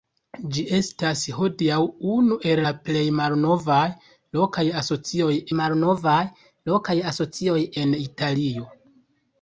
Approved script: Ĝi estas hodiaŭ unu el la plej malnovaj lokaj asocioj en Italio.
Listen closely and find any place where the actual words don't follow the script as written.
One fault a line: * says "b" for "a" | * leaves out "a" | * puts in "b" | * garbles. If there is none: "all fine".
* puts in "malnovaj lokaj asocioj"